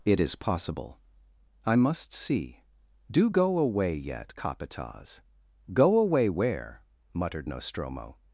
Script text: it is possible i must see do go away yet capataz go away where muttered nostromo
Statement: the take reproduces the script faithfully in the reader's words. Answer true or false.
true